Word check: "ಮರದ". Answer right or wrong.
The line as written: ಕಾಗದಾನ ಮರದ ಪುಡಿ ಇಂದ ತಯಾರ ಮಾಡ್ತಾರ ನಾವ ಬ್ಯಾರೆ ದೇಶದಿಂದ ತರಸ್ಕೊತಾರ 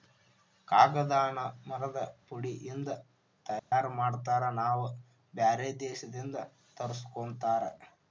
right